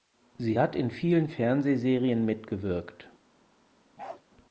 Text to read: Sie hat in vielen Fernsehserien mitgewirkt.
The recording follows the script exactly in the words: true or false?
true